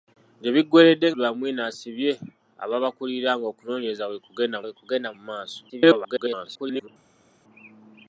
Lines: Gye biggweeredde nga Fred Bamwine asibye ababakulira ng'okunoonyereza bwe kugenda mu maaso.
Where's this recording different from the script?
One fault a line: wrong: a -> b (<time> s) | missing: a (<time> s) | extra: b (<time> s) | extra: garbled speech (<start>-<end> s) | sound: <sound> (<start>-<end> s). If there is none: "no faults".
missing: nga Fred (1.1 s)
extra: bwe kugenda (4.6 s)
extra: garbled speech (5.7-6.9 s)